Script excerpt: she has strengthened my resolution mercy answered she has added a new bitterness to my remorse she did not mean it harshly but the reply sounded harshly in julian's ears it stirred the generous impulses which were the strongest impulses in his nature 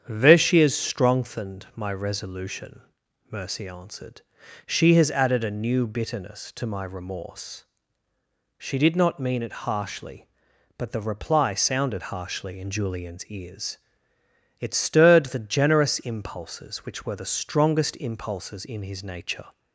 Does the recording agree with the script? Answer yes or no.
no